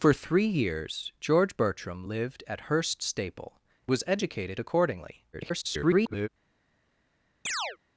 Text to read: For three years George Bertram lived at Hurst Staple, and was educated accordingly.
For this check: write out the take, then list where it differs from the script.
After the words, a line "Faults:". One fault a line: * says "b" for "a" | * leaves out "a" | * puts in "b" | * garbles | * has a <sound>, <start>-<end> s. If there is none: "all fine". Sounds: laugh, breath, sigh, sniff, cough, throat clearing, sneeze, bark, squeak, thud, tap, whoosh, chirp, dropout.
For three years George Bertram lived at Hurst Staple, was educated accordingly. [garbled]
Faults:
* leaves out "and"
* garbles
* has a chirp, 7.5-7.8 s